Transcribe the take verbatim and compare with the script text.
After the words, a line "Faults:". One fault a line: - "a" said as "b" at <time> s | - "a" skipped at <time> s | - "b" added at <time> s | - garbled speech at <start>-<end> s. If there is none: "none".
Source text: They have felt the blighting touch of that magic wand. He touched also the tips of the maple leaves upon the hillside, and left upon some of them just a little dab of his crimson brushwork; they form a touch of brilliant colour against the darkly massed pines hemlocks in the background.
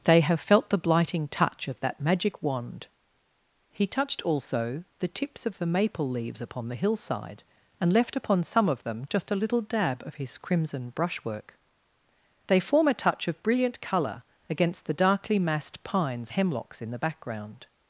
They have felt the blighting touch of that magic wand. He touched also the tips of the maple leaves upon the hillside, and left upon some of them just a little dab of his crimson brushwork; they form a touch of brilliant colour against the darkly massed pines hemlocks in the background.
Faults:
none